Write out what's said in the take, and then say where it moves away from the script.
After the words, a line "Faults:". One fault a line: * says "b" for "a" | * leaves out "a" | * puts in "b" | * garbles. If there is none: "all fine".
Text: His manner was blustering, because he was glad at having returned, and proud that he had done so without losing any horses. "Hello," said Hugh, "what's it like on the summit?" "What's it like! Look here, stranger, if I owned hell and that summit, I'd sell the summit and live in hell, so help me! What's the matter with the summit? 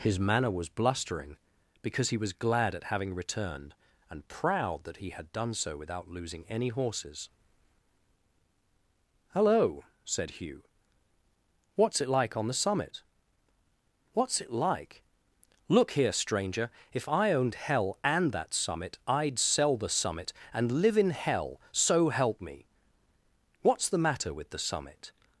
His manner was blustering, because he was glad at having returned, and proud that he had done so without losing any horses. "Hello," said Hugh, "what's it like on the summit?" "What's it like! Look here, stranger, if I owned hell and that summit, I'd sell the summit and live in hell, so help me! What's the matter with the summit?
Faults:
all fine